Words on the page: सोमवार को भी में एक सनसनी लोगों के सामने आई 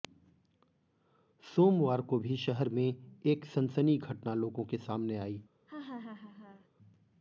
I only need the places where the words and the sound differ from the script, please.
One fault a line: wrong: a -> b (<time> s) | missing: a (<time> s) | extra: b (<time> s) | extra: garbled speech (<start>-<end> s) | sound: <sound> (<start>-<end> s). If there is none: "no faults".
extra: शहर (2.4 s)
extra: घटना (4.0 s)
sound: laugh (5.7-6.7 s)